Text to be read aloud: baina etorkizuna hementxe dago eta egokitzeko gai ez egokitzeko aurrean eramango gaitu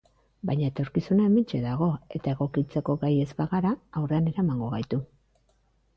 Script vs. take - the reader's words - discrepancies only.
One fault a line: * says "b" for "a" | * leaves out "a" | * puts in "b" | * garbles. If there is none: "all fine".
* says "bagara" for "egokitzeko"